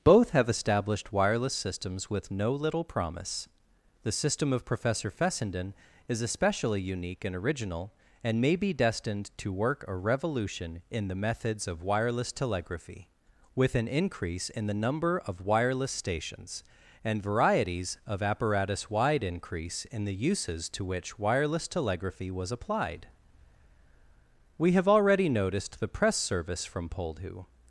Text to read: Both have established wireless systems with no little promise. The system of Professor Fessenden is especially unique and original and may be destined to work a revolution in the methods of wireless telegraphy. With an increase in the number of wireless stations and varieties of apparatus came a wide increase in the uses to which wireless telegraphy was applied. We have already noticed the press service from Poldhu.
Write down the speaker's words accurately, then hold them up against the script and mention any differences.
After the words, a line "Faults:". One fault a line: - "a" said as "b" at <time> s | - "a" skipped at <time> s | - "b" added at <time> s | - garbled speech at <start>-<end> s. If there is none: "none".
Both have established wireless systems with no little promise. The system of Professor Fessenden is especially unique and original and may be destined to work a revolution in the methods of wireless telegraphy. With an increase in the number of wireless stations and varieties of apparatus wide increase in the uses to which wireless telegraphy was applied. We have already noticed the press service from Poldhu.
Faults:
- "came a" skipped at 18.9 s